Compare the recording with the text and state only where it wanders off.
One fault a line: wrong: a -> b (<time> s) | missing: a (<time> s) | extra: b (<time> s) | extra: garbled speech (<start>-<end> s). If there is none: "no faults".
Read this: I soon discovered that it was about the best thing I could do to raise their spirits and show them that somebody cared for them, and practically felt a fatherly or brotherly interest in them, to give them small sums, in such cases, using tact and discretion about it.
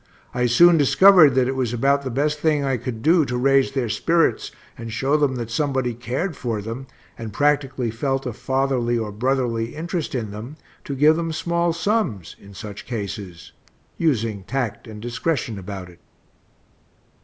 no faults